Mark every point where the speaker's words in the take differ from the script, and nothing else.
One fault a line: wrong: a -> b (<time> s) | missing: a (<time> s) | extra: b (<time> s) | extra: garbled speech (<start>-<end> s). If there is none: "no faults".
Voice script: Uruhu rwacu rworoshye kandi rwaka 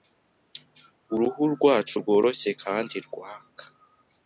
no faults